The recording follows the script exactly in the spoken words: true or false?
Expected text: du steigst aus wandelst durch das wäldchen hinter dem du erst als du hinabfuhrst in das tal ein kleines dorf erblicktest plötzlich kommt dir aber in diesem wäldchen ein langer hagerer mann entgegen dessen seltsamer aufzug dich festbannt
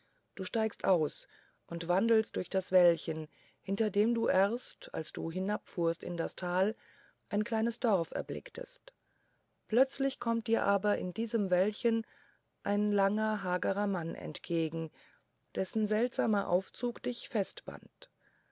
false